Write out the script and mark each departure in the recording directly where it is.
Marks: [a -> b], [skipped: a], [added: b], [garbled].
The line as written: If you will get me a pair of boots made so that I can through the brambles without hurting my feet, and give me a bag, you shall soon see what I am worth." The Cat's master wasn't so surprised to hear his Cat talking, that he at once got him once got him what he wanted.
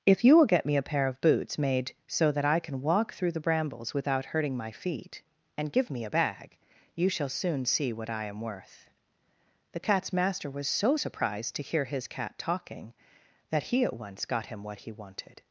If you will get me a pair of boots made so that I can [added: walk] through the brambles without hurting my feet, and give me a bag, you shall soon see what I am worth." The Cat's master [wasn't -> was] so surprised to hear his Cat talking, that he at once got him [skipped: once got him] what he wanted.